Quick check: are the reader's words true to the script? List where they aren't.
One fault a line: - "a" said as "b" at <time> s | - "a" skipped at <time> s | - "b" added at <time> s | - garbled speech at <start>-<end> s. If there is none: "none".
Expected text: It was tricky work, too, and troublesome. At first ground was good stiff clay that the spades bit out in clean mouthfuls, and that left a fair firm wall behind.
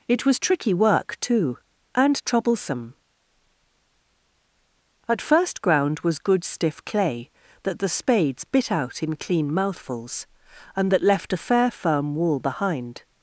none